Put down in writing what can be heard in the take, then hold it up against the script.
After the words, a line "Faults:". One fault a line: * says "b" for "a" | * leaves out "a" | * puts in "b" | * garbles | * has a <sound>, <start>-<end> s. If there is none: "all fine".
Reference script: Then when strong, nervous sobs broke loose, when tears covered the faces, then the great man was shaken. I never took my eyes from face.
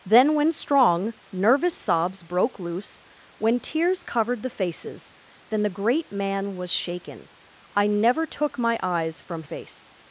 Then when strong, nervous sobs broke loose, when tears covered the faces, then the great man was shaken. I never took my eyes from face.
Faults:
all fine